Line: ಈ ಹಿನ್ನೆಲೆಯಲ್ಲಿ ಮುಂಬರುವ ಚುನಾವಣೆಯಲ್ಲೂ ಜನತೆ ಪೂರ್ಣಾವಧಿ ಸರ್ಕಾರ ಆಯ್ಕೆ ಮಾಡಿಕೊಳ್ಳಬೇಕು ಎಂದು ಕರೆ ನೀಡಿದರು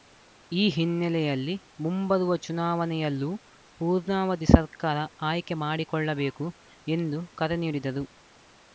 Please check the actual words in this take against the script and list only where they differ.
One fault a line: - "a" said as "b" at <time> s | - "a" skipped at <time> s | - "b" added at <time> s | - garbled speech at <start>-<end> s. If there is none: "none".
- "ಜನತೆ" skipped at 3.3 s